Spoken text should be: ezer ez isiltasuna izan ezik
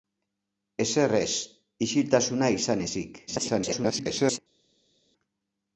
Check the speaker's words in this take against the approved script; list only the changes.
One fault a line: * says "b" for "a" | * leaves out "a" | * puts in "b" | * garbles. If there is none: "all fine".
* garbles